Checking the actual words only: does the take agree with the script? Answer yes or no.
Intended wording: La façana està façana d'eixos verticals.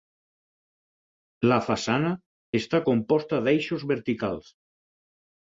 no